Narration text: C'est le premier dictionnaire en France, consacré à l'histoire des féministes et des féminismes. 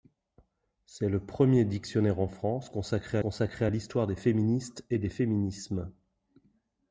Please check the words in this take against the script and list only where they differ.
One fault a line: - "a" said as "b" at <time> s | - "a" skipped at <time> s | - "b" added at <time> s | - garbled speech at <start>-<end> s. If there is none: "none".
- "consacré" added at 3.2 s